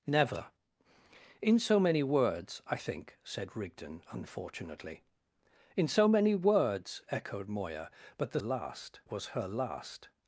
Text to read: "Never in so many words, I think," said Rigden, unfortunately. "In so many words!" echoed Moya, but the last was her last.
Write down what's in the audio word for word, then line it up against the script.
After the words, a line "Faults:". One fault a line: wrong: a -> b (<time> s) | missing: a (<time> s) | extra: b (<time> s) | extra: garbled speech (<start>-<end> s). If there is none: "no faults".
"Never in so many words, I think," said Rigden, unfortunately. "In so many words!" echoed Moya, but the last was her last.
Faults:
no faults